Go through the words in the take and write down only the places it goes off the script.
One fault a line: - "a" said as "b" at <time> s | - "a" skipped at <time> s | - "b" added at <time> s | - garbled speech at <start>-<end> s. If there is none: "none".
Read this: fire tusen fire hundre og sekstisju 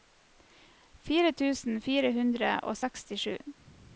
none